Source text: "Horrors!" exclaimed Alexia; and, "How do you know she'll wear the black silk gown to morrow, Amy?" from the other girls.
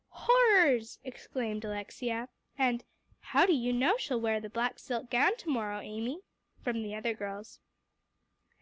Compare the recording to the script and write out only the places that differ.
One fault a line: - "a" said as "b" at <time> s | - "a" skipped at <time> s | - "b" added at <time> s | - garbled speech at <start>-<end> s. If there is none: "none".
none